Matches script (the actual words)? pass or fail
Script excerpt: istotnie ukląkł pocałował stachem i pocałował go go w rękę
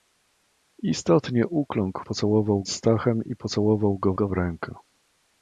pass